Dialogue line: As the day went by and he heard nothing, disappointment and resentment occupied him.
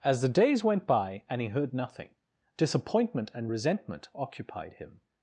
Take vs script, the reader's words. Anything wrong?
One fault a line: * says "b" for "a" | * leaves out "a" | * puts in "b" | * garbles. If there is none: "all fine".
* says "days" for "day"